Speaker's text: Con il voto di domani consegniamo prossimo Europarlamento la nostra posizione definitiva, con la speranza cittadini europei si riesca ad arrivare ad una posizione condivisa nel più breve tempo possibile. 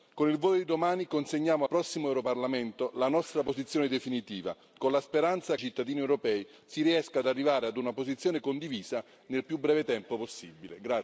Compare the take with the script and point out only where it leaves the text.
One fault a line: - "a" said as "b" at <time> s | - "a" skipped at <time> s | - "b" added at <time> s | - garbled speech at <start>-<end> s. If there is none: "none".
none